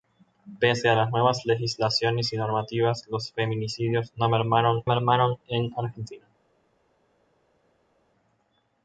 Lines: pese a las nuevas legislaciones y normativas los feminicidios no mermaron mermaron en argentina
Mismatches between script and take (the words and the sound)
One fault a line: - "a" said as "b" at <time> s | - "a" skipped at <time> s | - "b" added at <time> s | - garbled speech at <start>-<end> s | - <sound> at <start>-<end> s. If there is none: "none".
none